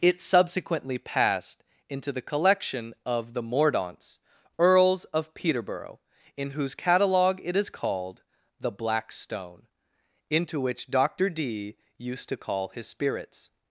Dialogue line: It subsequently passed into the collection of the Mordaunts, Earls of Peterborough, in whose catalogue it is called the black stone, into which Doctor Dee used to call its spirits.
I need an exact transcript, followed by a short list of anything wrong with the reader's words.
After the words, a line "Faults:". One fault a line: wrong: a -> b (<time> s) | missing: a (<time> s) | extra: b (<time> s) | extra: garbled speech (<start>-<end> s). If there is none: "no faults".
It subsequently passed into the collection of the Mordaunts, Earls of Peterborough, in whose catalogue it is called the black stone, into which Doctor Dee used to call his spirits.
Faults:
wrong: its -> his (12.7 s)